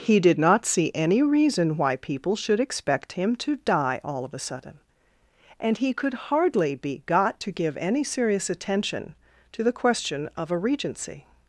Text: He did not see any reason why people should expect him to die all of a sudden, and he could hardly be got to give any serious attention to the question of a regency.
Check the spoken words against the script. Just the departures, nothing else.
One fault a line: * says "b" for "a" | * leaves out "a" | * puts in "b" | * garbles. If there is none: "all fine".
all fine